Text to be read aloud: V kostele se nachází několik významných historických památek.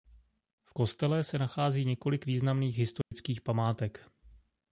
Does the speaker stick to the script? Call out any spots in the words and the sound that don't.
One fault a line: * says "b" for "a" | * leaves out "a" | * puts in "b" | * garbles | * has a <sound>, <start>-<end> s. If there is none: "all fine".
* has a dropout, 3.0-3.1 s